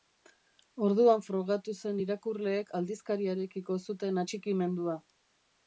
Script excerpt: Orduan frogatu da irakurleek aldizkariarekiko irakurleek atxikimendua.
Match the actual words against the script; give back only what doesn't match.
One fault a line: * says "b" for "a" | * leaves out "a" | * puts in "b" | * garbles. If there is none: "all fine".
* says "zen" for "da"
* says "zuten" for "irakurleek"